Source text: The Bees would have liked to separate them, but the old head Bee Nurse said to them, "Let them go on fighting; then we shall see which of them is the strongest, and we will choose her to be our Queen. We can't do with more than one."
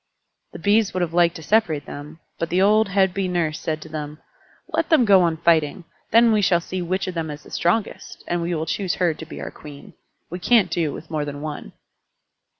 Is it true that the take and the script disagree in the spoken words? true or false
false